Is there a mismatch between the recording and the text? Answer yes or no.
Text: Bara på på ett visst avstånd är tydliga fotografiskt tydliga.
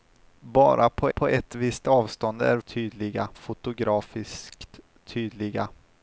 no